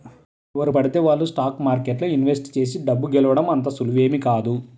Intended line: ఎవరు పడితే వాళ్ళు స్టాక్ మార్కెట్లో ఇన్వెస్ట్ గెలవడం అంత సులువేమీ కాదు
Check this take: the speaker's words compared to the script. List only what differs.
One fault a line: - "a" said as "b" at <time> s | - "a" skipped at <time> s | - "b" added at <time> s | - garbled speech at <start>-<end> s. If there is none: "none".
- "చేసి డబ్బు" added at 2.6 s